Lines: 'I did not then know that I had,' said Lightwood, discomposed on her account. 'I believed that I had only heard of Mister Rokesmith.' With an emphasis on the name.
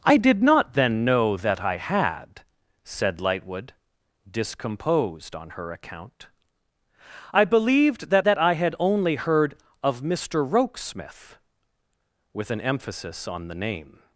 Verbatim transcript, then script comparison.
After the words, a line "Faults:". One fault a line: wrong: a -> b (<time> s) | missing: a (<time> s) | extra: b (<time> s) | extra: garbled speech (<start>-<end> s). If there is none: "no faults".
'I did not then know that I had,' said Lightwood, discomposed on her account. 'I believed that that I had only heard of Mister Rokesmith.' With an emphasis on the name.
Faults:
extra: that (8.2 s)